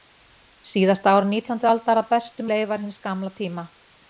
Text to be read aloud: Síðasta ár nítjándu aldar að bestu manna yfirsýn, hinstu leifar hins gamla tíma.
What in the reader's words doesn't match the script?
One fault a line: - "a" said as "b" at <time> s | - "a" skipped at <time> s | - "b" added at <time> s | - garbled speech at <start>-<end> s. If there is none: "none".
- "manna yfirsýn hinstu" skipped at 2.5 s